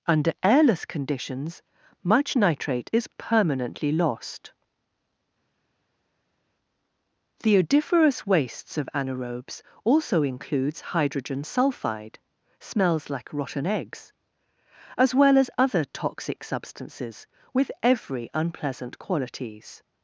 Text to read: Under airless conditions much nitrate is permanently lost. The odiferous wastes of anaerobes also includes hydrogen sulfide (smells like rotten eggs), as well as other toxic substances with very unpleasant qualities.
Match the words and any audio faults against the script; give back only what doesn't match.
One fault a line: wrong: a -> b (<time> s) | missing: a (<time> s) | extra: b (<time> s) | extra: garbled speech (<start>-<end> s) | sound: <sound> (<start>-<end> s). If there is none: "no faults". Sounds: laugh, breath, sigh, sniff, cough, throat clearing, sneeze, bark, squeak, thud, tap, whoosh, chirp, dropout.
wrong: very -> every (17.8 s)